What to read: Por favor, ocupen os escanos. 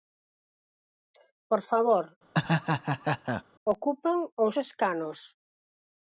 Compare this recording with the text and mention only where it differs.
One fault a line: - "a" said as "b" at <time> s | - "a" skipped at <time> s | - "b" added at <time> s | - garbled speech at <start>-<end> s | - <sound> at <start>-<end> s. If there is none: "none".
- laugh at 2.3-3.4 s